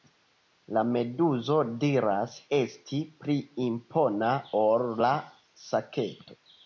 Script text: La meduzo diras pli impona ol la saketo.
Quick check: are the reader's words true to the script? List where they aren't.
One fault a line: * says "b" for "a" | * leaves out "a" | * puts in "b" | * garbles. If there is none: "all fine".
* puts in "esti"